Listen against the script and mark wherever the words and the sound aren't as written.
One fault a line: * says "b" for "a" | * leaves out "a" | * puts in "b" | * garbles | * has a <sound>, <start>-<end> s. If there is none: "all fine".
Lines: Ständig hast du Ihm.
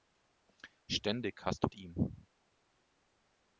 all fine